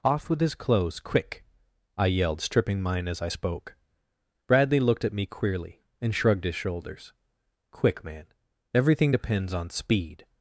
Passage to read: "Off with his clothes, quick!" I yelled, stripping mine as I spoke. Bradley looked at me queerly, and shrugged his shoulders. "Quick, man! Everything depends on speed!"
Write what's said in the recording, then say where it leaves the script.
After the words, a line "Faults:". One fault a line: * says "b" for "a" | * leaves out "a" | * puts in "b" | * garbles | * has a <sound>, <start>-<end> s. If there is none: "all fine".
"Off with his clothes, quick!" I yelled, stripping mine as I spoke. Bradley looked at me queerly, and shrugged his shoulders. "Quick, man! Everything depends on speed!"
Faults:
all fine